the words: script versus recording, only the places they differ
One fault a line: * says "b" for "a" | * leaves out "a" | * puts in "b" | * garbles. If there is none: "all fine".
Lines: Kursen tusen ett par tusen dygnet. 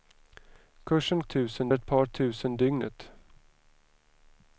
all fine